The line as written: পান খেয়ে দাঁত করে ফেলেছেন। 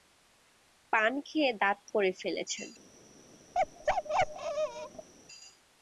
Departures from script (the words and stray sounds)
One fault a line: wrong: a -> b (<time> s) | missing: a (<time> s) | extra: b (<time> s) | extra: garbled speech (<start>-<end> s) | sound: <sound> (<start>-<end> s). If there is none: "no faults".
sound: bark (3.5-5.1 s)